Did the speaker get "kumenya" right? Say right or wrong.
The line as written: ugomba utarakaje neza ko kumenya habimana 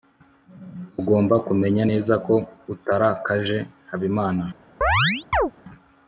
wrong